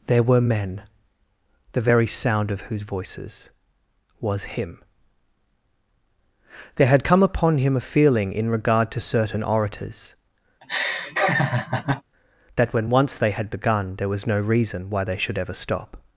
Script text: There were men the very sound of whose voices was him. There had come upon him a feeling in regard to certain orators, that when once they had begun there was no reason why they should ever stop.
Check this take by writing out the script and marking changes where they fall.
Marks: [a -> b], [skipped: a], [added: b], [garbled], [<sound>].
There were men the very sound of whose voices was him. There had come upon him a feeling in regard to certain orators, [laugh] that when once they had begun there was no reason why they should ever stop.